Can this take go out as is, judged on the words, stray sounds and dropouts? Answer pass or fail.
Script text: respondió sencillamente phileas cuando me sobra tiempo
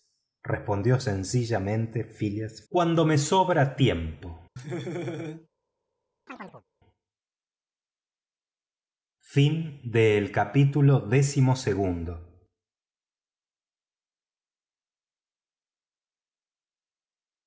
fail